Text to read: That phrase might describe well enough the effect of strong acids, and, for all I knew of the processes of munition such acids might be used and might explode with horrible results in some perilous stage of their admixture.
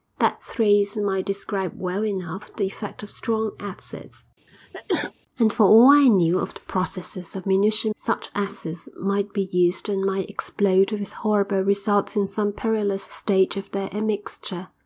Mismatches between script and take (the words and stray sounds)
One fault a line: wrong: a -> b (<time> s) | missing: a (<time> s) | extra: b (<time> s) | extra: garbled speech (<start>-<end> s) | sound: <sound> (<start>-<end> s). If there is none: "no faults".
sound: sneeze (4.5-5.1 s)